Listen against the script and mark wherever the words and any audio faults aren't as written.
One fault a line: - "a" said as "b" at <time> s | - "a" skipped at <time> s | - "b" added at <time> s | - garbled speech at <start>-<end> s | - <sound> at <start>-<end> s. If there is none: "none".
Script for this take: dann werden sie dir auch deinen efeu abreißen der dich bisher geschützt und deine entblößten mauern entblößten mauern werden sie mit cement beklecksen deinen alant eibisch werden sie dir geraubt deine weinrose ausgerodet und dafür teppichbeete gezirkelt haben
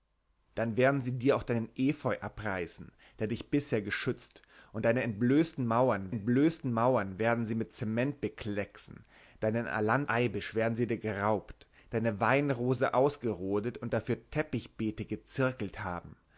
none